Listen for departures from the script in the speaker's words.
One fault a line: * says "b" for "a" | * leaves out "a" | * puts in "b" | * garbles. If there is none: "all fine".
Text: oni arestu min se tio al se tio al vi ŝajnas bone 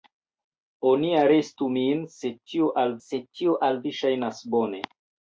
all fine